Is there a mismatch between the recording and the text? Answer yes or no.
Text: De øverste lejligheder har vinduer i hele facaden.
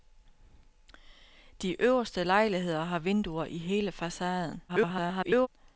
yes